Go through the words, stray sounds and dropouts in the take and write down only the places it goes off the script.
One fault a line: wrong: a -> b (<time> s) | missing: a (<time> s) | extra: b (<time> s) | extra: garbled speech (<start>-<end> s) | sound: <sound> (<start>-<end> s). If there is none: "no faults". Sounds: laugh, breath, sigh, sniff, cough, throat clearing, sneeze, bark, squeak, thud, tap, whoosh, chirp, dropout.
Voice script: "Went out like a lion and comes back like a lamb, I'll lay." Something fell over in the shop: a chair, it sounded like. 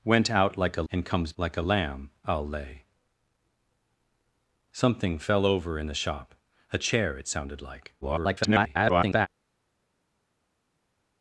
missing: lion (0.8 s)
missing: back (1.3 s)
extra: garbled speech (8.0-9.3 s)